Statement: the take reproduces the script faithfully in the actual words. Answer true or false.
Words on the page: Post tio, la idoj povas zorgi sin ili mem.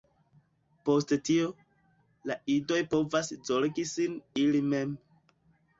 true